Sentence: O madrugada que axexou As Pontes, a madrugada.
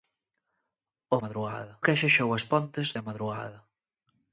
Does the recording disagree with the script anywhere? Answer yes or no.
no